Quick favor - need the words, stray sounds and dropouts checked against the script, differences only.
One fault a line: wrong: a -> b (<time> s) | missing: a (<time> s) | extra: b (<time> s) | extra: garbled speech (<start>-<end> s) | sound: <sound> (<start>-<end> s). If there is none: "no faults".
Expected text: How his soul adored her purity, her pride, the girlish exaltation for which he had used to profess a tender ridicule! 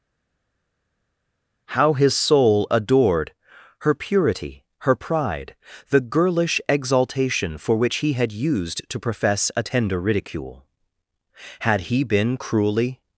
extra: Had he been cruelly (11.6 s)